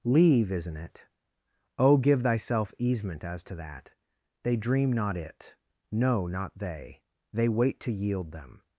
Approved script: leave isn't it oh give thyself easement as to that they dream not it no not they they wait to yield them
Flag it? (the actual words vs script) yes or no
no